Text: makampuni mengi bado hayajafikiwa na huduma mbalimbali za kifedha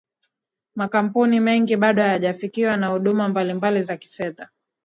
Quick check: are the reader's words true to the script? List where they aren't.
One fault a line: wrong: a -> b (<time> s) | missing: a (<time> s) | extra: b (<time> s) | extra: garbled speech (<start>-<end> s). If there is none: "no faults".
no faults